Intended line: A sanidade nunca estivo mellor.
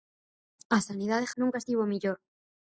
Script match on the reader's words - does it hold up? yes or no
yes